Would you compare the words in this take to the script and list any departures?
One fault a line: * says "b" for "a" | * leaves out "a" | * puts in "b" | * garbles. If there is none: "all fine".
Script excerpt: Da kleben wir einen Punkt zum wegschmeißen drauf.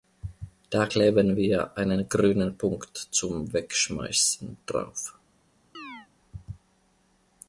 * puts in "grünen"